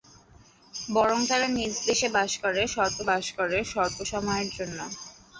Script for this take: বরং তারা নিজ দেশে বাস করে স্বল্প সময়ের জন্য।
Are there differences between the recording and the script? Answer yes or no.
yes